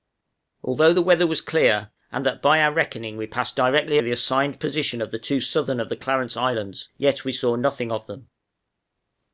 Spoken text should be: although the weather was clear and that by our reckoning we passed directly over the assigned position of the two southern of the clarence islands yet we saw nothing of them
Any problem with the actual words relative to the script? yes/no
yes